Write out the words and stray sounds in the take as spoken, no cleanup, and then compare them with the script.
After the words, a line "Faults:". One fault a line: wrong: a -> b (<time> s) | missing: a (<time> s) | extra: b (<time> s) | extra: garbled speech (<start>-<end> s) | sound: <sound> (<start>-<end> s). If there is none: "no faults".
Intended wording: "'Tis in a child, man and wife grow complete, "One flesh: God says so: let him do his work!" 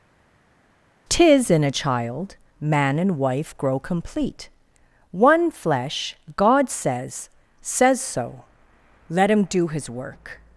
"'Tis in a child, man and wife grow complete, "One flesh: God says says so: let him do his work!"
Faults:
extra: says (7.6 s)